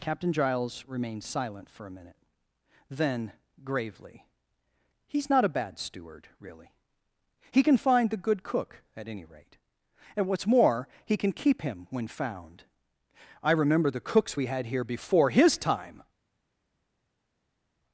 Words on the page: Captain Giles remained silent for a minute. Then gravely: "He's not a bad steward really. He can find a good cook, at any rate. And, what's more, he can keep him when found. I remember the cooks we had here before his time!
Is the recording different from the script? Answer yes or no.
yes